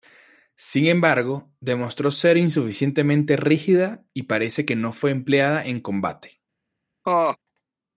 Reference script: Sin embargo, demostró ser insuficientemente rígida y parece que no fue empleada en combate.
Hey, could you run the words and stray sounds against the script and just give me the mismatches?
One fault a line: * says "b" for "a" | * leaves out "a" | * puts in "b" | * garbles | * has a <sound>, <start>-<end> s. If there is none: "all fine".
* has a laugh, 7.0-7.4 s